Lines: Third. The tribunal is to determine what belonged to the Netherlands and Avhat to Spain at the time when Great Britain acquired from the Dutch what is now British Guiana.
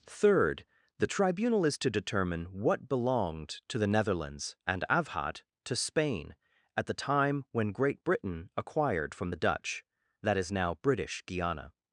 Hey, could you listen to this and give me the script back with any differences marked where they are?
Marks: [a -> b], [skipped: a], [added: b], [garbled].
Third. The tribunal is to determine what belonged to the Netherlands and Avhat to Spain at the time when Great Britain acquired from the Dutch [what -> that] is now British Guiana.